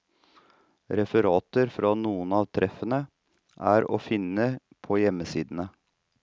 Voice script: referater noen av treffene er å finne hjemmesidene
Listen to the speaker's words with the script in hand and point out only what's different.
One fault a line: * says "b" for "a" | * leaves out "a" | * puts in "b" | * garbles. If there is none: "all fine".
* puts in "fra"
* puts in "på"